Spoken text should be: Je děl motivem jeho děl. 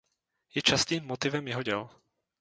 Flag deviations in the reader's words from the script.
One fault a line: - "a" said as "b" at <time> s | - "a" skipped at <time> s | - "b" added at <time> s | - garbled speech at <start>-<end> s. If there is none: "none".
- "děl" said as "častým" at 0.6 s